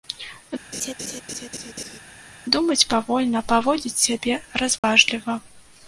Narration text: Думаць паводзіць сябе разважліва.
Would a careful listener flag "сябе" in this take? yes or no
no